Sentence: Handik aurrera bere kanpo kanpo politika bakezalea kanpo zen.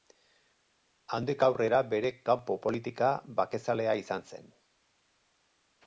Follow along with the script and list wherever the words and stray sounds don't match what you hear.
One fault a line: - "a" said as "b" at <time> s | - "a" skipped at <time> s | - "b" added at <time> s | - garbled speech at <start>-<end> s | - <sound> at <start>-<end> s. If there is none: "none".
- "kanpo" skipped at 2.6 s
- "kanpo" said as "izan" at 4.0 s